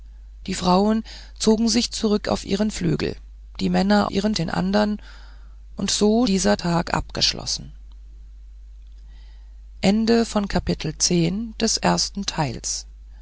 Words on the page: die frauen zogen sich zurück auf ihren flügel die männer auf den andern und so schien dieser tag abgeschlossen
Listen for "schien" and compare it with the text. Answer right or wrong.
wrong